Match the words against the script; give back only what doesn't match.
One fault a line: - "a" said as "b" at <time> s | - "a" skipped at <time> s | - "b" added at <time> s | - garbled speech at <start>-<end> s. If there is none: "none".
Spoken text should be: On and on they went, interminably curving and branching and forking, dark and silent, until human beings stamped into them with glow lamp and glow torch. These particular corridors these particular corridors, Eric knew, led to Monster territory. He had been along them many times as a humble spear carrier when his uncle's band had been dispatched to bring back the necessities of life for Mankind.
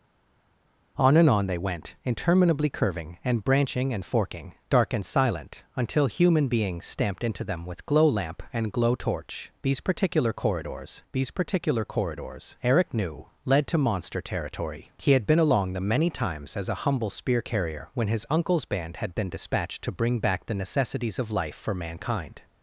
none